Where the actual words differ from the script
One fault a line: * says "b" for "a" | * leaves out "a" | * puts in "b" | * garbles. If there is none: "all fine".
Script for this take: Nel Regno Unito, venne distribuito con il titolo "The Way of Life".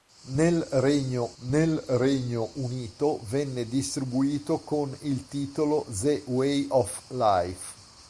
* puts in "nel Regno"